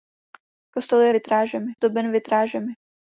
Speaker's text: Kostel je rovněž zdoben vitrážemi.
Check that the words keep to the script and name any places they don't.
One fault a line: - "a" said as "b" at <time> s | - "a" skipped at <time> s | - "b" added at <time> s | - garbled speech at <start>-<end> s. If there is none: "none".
- "rovněž" said as "vitrážemi" at 1.1 s